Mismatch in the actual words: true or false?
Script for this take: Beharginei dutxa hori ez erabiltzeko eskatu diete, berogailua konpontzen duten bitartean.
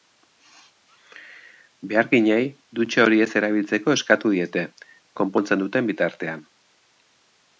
true